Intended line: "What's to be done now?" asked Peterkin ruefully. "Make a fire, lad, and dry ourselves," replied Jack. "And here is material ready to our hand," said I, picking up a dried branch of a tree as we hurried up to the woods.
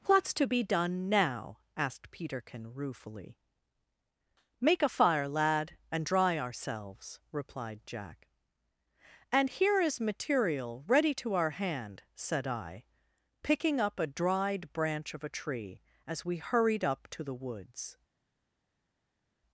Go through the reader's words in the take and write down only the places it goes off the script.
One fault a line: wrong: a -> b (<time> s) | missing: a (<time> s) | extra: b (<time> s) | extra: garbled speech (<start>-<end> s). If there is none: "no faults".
no faults